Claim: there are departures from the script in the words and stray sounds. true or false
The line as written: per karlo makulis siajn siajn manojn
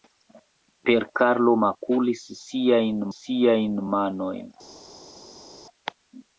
false